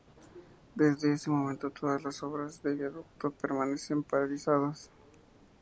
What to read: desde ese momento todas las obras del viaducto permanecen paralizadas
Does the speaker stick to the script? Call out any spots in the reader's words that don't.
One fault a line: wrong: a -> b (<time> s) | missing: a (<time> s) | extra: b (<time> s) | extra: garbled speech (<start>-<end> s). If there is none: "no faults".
no faults